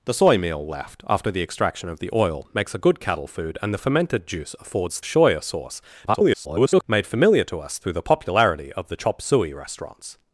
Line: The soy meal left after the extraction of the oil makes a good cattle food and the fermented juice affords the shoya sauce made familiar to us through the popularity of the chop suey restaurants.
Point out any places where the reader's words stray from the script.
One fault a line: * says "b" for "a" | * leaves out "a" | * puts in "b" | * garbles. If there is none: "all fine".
* leaves out "the"
* garbles